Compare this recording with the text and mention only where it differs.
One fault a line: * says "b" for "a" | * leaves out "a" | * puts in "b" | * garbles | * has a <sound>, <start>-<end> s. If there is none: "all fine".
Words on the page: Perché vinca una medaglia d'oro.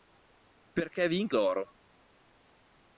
* leaves out "una medaglia"